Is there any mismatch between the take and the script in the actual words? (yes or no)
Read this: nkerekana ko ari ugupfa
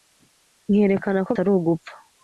no